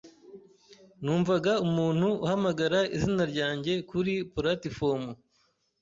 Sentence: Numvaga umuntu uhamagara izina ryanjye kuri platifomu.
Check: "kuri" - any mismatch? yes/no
no